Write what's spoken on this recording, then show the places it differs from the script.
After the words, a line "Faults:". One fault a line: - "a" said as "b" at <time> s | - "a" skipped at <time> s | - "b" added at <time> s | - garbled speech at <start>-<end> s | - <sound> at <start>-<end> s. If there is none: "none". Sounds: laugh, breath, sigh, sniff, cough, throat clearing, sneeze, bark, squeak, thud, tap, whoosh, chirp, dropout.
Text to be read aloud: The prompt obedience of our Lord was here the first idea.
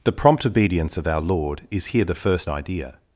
The prompt obedience of our Lord is here the first idea.
Faults:
- "was" said as "is" at 1.7 s